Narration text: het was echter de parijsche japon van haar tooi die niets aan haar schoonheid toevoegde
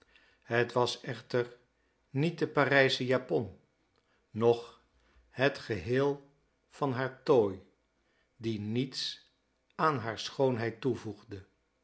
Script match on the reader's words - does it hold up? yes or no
no